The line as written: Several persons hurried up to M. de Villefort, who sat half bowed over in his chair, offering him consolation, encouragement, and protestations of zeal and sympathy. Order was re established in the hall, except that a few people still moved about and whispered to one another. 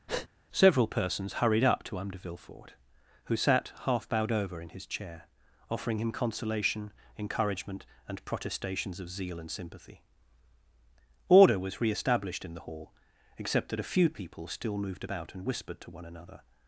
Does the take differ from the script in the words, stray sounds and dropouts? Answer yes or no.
yes